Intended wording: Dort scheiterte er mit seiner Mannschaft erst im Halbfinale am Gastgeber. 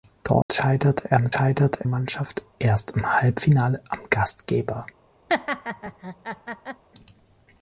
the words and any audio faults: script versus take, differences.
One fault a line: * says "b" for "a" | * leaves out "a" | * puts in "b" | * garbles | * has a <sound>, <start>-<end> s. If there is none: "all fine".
* has a dropout, 0.4-0.5 s
* says "scheiterte" for "seiner"
* has a laugh, 5.3-6.8 s